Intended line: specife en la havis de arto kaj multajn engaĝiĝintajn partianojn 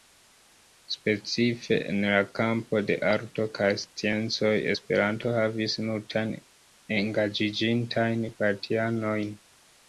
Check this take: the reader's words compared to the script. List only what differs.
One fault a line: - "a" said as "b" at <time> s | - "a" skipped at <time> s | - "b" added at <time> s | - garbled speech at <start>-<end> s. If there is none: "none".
- "havis" said as "kampo" at 2.4 s
- "sciencoj esperanto havis" added at 3.8 s